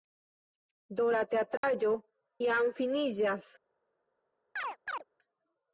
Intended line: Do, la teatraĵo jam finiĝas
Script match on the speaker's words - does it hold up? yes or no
yes